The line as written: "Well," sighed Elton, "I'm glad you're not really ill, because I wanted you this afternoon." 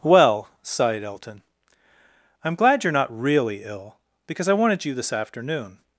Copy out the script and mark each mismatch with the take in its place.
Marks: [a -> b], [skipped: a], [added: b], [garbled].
"Well," sighed Elton, "I'm glad you're not really ill, because I wanted you this afternoon."